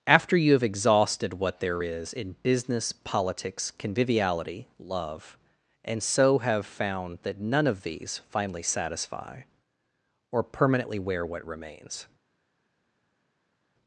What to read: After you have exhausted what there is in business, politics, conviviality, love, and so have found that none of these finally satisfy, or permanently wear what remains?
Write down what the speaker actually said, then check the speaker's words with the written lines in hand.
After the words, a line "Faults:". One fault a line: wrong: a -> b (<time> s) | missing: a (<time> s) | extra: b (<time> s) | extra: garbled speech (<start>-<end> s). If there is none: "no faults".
After you have exhausted what there is in business, politics, conviviality, love, and so have found that none of these finally satisfy, or permanently wear what remains?
Faults:
no faults